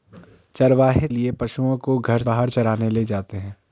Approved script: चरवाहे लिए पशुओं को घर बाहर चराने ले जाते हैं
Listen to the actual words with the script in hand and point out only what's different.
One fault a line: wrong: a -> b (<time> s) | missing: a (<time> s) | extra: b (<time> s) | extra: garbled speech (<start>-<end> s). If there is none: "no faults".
no faults